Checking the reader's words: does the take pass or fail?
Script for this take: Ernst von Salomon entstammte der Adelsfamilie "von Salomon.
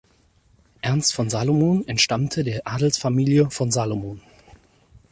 pass